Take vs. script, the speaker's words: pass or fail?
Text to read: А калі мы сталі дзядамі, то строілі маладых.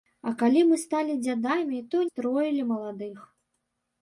pass